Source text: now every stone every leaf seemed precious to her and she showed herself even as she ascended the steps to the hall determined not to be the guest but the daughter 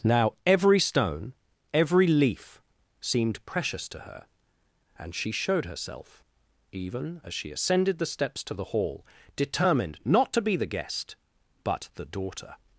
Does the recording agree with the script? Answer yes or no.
yes